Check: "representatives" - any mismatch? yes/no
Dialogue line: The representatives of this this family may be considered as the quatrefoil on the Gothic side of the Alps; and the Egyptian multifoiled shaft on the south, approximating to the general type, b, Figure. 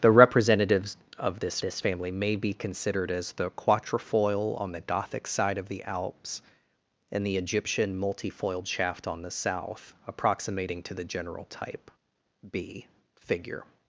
no